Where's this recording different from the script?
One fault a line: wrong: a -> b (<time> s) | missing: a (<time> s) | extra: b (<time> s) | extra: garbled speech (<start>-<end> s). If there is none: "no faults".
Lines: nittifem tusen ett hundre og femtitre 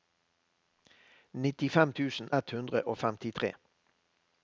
no faults